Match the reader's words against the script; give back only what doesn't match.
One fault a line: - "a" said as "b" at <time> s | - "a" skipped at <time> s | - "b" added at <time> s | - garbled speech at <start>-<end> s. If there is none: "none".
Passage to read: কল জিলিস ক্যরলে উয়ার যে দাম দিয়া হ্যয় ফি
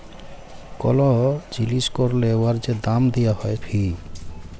none